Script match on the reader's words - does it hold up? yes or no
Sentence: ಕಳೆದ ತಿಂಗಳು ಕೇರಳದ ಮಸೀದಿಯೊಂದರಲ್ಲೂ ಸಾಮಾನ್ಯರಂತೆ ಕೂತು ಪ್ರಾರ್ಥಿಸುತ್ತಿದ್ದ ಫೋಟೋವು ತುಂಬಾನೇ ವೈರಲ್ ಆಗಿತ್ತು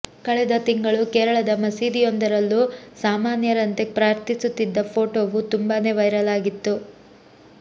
no